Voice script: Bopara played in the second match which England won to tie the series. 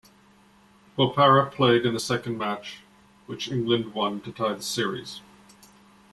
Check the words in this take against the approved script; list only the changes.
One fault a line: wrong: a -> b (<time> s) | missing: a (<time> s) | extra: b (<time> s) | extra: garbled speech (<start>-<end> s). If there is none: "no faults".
no faults